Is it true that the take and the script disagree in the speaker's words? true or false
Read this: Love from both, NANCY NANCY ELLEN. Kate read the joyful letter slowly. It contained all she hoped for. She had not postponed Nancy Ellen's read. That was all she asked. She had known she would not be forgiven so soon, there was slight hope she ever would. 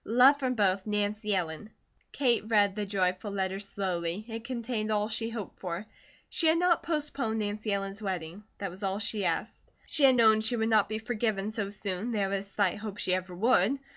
true